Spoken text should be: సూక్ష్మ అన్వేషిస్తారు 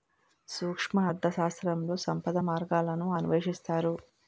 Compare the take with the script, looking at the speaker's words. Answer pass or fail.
fail